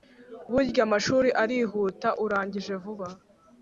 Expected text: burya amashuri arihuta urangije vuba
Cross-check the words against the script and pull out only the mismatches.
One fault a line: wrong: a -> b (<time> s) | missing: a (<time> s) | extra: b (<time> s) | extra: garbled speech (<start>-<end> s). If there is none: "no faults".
no faults